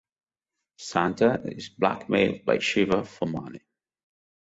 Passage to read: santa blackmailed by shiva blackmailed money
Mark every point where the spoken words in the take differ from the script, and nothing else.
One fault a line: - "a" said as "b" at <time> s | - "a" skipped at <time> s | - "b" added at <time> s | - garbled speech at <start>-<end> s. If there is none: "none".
- "is" added at 1.4 s
- "blackmailed" said as "for" at 3.0 s